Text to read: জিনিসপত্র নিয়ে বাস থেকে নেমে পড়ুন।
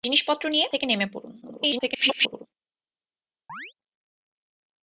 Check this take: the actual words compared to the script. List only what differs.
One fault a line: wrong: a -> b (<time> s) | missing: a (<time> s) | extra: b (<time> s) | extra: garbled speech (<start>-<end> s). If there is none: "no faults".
missing: বাস (0.7 s)
extra: garbled speech (1.4-2.5 s)